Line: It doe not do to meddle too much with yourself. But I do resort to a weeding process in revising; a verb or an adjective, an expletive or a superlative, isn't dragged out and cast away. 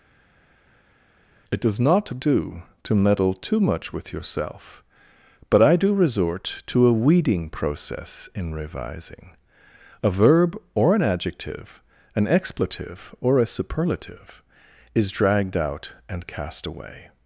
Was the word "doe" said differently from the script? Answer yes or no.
yes